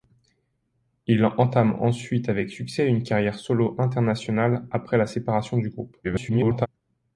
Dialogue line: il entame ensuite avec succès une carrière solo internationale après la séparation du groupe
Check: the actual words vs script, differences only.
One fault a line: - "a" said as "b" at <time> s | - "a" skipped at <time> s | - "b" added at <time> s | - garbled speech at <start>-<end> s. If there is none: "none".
- garbled speech at 6.0-6.7 s